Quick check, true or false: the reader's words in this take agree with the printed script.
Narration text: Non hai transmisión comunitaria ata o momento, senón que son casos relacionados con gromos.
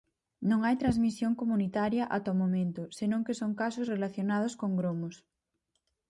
true